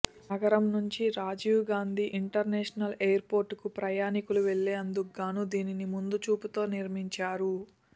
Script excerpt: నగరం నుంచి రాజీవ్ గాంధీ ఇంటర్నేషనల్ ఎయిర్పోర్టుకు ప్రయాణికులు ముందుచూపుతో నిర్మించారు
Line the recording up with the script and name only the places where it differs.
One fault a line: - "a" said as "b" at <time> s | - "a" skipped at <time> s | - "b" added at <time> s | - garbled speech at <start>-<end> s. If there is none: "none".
- "వెళ్లేందుకుగాను దీనిని" added at 4.5 s